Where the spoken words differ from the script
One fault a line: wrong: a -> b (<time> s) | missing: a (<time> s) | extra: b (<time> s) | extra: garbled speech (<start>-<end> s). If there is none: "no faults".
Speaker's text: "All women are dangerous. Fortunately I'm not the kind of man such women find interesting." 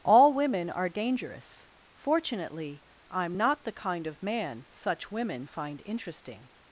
no faults